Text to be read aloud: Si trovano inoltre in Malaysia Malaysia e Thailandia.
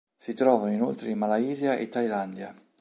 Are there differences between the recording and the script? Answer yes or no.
yes